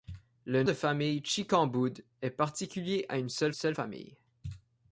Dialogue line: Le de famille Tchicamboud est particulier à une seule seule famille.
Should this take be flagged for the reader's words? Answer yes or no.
no